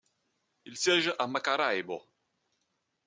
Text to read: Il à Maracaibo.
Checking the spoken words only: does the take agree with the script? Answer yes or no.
no